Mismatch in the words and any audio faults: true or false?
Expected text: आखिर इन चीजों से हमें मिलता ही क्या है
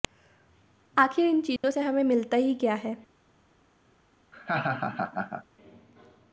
true